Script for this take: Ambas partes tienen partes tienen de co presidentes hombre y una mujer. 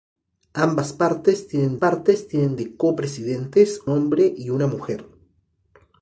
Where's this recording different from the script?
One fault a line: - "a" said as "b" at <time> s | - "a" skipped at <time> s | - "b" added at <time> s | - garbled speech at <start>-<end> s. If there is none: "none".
none